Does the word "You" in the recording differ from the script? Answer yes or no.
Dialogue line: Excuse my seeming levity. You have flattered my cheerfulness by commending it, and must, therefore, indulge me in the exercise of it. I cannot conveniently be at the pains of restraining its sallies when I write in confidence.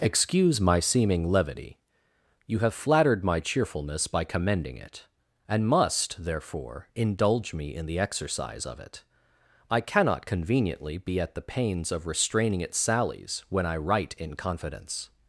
no